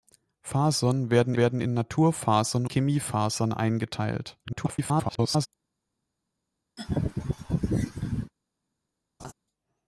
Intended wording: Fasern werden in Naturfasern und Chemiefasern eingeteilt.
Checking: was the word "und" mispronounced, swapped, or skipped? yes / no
yes